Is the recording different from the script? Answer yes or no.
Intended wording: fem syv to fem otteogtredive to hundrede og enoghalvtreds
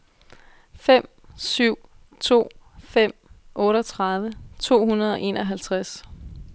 no